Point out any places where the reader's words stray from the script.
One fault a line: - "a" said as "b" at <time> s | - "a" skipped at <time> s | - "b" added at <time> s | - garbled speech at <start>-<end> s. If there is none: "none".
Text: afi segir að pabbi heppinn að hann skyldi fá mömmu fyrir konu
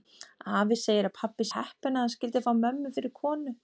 none